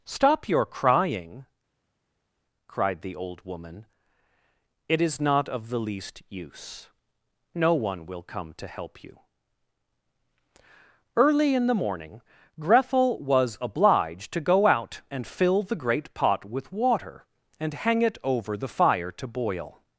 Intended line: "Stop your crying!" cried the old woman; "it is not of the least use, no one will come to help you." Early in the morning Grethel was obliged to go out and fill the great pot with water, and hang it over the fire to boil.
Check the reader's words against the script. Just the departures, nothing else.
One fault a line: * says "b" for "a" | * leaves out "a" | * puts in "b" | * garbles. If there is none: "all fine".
all fine